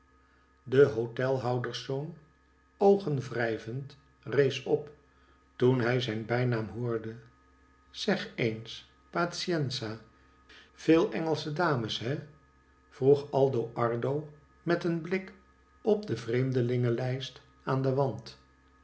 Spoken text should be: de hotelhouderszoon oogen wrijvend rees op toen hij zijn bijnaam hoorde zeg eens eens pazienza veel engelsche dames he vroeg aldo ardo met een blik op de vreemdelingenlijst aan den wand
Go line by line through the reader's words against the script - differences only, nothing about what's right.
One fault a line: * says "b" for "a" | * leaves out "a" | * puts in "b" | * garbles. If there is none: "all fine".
* leaves out "eens"